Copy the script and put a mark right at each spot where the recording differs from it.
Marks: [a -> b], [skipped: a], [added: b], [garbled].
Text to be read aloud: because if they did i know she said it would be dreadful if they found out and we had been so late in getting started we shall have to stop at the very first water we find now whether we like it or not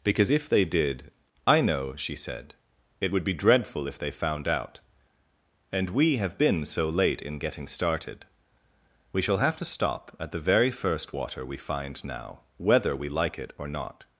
because if they did i know she said it would be dreadful if they found out and we [had -> have] been so late in getting started we shall have to stop at the very first water we find now whether we like it or not